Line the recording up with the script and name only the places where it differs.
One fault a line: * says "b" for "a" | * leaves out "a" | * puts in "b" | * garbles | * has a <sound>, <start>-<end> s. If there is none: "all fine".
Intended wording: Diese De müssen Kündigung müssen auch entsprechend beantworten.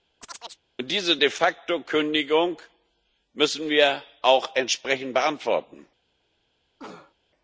* has a chirp, 0.2-0.6 s
* says "facto" for "müssen"
* puts in "wir"
* has a cough, 6.8-7.1 s